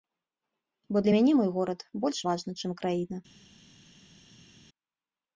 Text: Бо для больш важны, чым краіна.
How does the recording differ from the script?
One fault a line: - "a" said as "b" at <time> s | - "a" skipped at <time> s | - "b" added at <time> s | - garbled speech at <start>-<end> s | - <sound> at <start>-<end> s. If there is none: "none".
- "мяне мой горад" added at 1.1 s